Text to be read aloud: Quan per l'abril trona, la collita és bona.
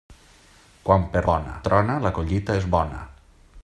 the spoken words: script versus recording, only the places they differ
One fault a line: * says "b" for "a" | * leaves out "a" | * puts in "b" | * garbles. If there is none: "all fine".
* says "bona" for "l'abril"